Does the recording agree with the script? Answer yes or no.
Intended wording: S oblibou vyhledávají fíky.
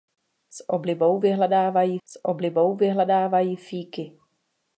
no